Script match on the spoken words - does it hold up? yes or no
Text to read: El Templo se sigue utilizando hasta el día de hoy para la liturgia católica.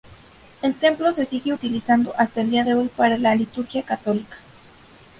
yes